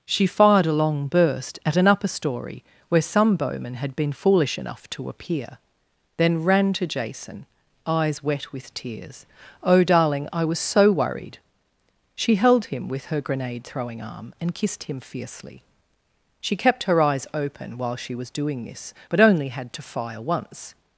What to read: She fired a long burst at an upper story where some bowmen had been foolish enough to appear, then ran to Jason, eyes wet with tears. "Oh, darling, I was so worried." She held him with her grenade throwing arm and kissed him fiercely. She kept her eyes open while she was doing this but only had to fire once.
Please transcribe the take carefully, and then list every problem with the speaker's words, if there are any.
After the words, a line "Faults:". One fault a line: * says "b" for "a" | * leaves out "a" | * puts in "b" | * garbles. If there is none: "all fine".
She fired a long burst at an upper story where some bowmen had been foolish enough to appear, then ran to Jason, eyes wet with tears. "Oh, darling, I was so worried." She held him with her grenade throwing arm and kissed him fiercely. She kept her eyes open while she was doing this but only had to fire once.
Faults:
all fine